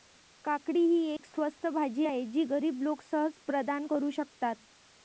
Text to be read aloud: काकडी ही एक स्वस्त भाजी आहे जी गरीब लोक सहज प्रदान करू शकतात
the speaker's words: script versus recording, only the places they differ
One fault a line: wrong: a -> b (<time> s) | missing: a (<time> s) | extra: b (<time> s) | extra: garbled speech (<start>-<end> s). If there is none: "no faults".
no faults